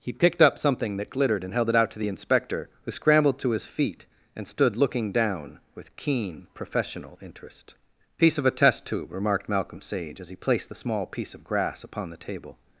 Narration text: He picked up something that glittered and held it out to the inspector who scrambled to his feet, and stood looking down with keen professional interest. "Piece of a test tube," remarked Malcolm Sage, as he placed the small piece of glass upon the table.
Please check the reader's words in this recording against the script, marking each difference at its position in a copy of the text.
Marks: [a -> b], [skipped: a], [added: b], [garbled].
He picked up something that glittered and held it out to the inspector who scrambled to his feet, and stood looking down with keen professional interest. "Piece of a test tube," remarked Malcolm Sage, as he placed the small piece of [glass -> grass] upon the table.